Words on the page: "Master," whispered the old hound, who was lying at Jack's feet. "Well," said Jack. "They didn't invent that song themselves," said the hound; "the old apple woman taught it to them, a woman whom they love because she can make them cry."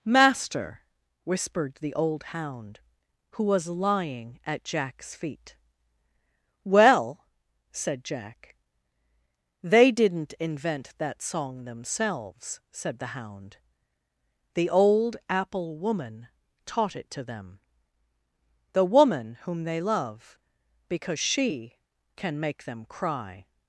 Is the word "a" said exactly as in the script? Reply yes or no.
no